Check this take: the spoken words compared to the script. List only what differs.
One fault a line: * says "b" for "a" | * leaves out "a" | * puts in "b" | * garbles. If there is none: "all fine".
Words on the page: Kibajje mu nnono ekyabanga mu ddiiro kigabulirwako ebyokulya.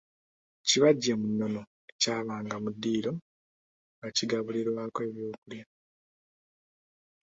* puts in "nga"